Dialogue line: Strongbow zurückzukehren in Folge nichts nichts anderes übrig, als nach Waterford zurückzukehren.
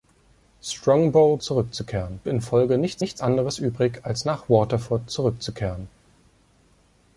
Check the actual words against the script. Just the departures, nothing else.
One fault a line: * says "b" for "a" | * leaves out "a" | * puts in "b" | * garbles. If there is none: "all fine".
all fine